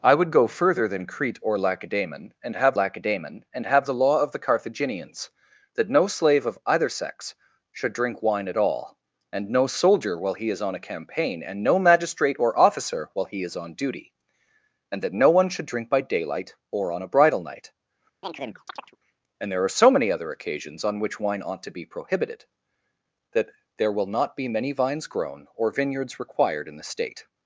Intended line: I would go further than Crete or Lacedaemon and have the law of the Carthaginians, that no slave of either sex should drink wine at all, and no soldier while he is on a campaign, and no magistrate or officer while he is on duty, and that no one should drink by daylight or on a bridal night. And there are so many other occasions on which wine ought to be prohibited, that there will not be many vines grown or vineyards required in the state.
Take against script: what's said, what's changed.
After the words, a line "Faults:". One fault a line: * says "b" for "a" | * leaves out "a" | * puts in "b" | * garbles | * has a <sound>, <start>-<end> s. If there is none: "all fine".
I would go further than Crete or Lacedaemon and have Lacedaemon and have the law of the Carthaginians, that no slave of either sex should drink wine at all, and no soldier while he is on a campaign, and no magistrate or officer while he is on duty, and that no one should drink by daylight or on a bridal night. And there are so many other occasions on which wine ought to be prohibited, that there will not be many vines grown or vineyards required in the state.
Faults:
* puts in "Lacedaemon and have"
* has a chirp, 18.2-19.0 s